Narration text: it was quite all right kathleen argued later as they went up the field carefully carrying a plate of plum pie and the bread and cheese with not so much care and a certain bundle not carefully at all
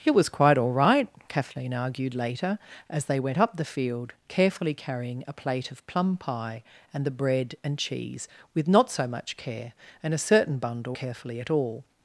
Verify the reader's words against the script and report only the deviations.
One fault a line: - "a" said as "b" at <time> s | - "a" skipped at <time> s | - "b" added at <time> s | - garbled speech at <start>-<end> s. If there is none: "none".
- "not" skipped at 11.0 s